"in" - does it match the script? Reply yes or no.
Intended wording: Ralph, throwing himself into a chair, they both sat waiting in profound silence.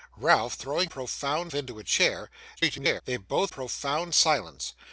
no